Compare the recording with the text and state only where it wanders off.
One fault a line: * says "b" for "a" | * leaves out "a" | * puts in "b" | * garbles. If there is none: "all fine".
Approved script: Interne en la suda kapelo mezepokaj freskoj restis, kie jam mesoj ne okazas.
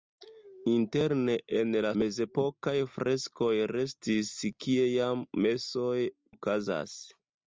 * leaves out "suda kapelo"
* leaves out "ne"